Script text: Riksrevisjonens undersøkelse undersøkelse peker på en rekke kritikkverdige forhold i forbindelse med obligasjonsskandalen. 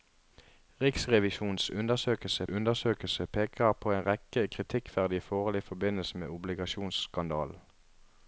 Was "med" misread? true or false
false